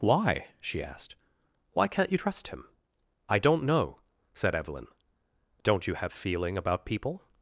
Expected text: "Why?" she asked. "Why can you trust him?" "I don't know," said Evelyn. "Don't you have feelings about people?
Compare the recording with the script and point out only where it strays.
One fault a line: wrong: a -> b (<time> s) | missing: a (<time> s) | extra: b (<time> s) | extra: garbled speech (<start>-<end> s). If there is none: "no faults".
wrong: can -> can't (1.9 s)
wrong: feelings -> feeling (6.1 s)